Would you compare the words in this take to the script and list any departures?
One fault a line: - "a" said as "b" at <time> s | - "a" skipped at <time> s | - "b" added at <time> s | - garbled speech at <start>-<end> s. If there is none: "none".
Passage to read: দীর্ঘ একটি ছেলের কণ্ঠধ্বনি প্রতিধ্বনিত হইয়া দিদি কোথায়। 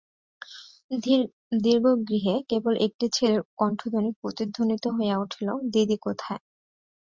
- "গৃহে কেবল" added at 2.1 s
- "উঠিল" added at 5.2 s